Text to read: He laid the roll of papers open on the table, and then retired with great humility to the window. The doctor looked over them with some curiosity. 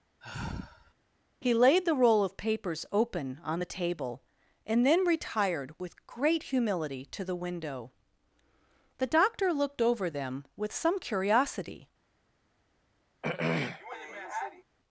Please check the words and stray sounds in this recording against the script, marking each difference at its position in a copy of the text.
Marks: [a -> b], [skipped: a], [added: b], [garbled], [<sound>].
[sigh] He laid the roll of papers open on the table, and then retired with great humility to the window. The doctor looked over them with some curiosity. [throat clearing]